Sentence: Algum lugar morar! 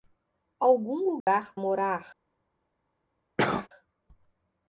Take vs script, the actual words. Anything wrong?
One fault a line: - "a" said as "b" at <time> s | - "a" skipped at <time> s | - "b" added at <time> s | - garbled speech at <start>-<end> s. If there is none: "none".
none